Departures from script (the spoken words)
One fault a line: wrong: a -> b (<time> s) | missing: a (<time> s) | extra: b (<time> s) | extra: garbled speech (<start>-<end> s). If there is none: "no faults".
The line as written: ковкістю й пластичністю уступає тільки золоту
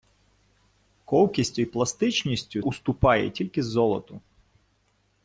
no faults